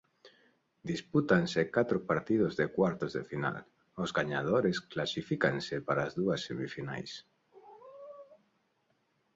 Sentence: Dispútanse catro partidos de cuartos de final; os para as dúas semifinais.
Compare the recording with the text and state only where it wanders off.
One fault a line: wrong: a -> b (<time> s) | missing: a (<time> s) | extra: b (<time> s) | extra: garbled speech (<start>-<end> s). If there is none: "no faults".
extra: gañadores clasifícanse (4.2 s)